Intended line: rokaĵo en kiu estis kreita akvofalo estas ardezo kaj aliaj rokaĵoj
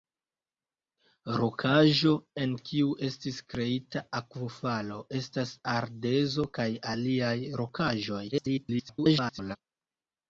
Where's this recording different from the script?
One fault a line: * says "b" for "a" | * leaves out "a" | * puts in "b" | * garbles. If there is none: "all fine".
* garbles